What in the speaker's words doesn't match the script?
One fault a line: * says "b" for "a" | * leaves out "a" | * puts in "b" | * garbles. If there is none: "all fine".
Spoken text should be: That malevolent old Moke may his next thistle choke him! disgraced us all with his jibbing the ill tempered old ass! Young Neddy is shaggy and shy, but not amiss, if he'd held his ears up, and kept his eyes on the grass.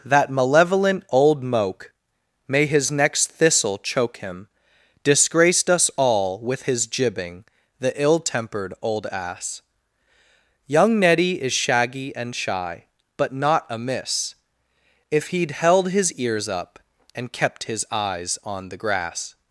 all fine